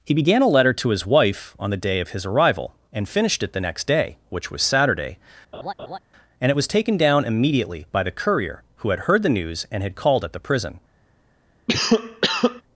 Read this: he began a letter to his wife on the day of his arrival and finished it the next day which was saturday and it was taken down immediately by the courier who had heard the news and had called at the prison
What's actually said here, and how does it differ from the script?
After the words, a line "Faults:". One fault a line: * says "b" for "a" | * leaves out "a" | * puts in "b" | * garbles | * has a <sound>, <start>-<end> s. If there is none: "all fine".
he began a letter to his wife on the day of his arrival and finished it the next day which was saturday and it was taken down immediately by the courier who had heard the news and had called at the prison
Faults:
* has a laugh, 5.5-6.0 s
* has a cough, 11.7-12.6 s